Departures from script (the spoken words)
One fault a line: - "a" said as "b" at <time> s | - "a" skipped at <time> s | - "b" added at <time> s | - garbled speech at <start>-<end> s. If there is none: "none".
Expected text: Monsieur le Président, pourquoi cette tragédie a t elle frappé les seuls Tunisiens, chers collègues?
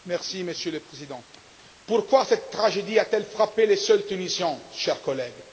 none